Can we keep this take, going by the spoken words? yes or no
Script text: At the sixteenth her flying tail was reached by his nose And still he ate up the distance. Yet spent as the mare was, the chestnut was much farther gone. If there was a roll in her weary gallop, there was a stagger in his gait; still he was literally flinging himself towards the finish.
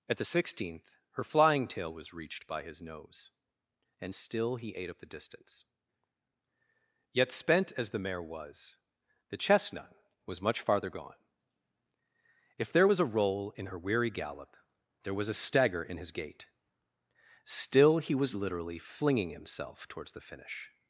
yes